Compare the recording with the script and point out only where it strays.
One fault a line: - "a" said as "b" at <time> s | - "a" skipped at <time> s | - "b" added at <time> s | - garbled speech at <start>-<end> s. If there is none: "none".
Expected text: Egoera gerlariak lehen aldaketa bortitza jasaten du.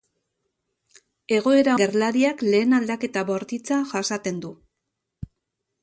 none